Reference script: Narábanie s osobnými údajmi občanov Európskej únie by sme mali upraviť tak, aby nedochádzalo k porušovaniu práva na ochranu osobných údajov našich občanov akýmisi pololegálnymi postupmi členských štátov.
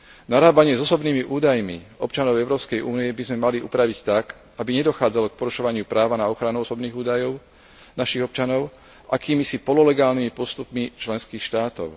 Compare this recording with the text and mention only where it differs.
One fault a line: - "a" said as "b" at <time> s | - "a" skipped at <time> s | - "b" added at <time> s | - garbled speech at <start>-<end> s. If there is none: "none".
none